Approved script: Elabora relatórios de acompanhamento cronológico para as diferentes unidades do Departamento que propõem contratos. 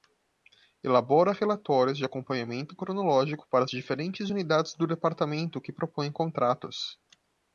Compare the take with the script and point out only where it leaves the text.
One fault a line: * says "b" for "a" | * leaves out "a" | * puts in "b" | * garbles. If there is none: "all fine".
all fine